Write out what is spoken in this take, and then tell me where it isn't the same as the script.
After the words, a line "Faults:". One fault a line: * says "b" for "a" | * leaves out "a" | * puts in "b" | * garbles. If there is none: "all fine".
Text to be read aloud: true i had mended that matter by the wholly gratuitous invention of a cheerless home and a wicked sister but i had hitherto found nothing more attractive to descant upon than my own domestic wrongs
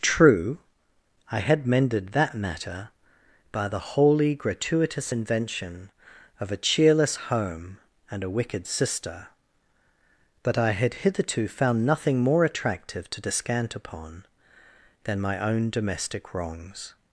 true i had mended that matter by the wholly gratuitous invention of a cheerless home and a wicked sister but i had hitherto found nothing more attractive to descant upon than my own domestic wrongs
Faults:
all fine